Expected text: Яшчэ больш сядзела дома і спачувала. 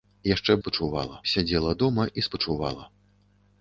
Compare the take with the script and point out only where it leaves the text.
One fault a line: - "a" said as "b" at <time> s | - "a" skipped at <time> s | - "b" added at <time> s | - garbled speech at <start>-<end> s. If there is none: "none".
- "больш" said as "спачувала" at 0.6 s